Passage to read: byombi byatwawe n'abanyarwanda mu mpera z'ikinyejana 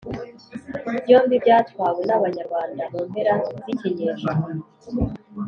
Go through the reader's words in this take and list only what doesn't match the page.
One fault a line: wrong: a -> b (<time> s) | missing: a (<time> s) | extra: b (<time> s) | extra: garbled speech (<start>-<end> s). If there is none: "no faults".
no faults